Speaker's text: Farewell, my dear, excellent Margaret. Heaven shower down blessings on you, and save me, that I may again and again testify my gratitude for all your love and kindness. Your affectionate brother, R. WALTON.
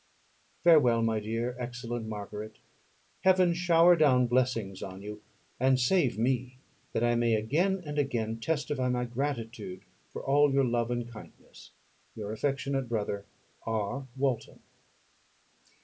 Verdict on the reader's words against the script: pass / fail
pass